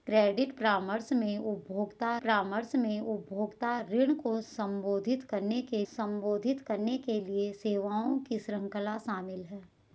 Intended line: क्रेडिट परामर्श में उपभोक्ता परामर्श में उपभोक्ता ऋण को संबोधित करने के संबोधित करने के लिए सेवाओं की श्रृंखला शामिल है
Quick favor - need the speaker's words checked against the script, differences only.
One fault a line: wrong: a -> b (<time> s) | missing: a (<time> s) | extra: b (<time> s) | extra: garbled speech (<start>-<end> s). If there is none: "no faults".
no faults